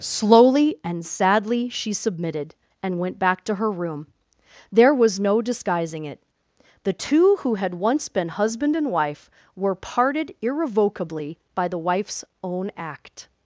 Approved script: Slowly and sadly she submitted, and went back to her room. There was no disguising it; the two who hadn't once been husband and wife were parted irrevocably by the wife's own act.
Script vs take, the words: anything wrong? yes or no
yes